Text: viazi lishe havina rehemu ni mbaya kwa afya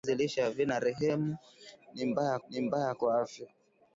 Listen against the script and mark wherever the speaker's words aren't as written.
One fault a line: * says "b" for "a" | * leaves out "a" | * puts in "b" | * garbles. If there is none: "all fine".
* puts in "ni mbaya"